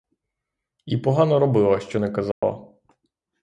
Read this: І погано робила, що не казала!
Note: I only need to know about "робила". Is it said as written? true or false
true